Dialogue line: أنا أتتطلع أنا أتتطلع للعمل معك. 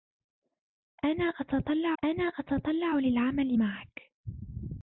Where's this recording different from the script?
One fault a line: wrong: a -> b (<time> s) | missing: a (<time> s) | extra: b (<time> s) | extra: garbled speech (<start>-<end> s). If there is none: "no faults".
no faults